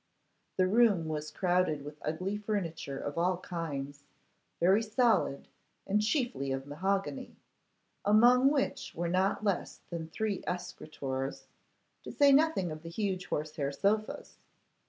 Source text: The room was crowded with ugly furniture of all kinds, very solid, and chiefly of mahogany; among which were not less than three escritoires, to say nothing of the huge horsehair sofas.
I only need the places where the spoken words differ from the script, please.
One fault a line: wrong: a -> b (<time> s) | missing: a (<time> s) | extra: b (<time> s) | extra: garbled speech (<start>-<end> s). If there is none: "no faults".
no faults